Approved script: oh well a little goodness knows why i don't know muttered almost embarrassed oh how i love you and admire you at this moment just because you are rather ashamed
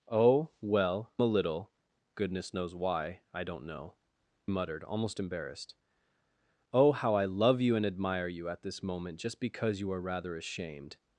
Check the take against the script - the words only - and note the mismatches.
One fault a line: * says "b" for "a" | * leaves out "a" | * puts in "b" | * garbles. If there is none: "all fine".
all fine